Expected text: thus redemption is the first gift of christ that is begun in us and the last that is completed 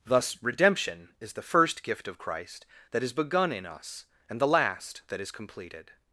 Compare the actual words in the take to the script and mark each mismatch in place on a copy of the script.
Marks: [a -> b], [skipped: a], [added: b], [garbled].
thus redemption is the first gift of christ that is begun in us and the last that is completed